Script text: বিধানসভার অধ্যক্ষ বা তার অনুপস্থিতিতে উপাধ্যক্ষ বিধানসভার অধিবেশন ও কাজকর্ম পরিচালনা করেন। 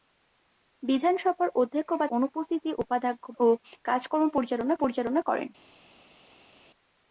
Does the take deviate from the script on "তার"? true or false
true